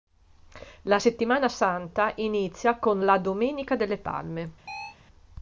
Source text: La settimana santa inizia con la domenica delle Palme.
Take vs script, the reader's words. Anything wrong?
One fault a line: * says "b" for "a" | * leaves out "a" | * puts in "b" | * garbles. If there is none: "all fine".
all fine